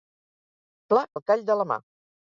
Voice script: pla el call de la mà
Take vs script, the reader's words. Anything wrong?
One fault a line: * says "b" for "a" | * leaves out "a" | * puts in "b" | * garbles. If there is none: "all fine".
all fine